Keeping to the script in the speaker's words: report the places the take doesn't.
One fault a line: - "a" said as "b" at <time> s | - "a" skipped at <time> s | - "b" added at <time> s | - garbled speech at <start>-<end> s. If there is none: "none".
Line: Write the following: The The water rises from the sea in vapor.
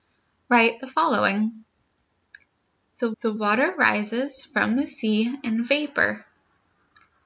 none